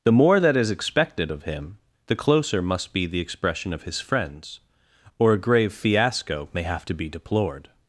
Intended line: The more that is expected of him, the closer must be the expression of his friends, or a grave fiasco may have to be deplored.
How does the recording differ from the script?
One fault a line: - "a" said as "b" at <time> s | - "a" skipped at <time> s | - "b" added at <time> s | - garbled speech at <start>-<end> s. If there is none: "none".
none